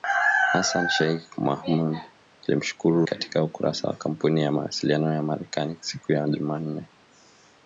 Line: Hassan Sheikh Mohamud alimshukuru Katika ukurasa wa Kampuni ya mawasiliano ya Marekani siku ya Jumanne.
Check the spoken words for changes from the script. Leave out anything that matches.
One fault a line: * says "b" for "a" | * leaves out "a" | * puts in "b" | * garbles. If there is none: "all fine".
all fine